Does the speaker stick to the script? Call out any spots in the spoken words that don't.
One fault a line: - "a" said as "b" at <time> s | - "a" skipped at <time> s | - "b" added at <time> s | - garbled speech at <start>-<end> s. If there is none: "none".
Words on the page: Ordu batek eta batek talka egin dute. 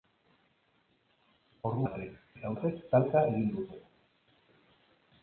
none